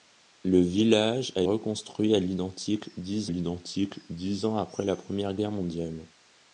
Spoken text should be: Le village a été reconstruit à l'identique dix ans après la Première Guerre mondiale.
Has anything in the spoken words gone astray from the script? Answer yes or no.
yes